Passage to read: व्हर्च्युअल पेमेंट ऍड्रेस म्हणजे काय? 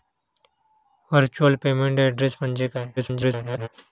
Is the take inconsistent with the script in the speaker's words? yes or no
yes